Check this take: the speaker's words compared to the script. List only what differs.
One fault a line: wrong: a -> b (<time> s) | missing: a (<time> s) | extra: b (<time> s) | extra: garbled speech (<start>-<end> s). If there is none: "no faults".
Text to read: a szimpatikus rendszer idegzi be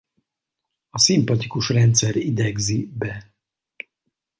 no faults